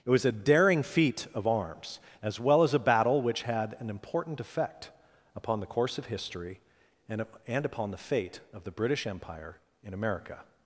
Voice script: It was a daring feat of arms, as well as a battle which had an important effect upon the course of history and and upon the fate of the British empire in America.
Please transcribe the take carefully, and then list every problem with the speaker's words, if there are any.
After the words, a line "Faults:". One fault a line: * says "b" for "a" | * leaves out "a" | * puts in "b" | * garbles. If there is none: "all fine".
It was a daring feat of arms, as well as a battle which had an important effect upon the course of history and and upon the fate of the British empire in America.
Faults:
all fine